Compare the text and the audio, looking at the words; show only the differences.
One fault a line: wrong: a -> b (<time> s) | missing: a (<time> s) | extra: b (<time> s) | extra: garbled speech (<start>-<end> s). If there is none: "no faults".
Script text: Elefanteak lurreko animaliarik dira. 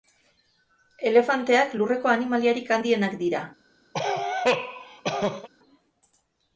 extra: handienak (2.8 s)